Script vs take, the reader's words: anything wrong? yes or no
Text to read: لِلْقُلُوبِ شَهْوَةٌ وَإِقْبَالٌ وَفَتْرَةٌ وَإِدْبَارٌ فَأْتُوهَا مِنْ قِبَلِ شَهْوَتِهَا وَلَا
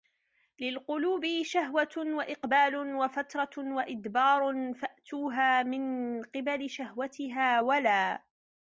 no